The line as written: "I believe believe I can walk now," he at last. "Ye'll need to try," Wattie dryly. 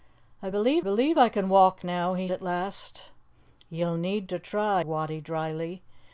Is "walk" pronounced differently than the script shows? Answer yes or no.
no